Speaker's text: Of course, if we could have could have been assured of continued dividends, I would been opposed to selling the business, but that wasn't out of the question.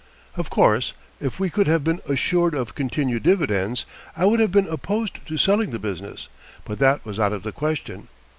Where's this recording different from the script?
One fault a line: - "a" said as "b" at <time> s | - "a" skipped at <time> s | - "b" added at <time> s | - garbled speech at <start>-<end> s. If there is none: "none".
- "could have" skipped at 1.8 s
- "have" added at 4.4 s
- "wasn't" said as "was" at 7.0 s